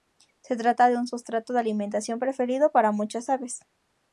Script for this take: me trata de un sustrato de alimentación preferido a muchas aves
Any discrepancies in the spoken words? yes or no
yes